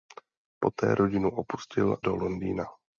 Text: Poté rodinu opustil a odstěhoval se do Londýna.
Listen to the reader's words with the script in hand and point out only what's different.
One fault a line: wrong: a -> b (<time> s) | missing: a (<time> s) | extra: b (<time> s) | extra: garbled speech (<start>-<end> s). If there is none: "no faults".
missing: a odstěhoval se (2.0 s)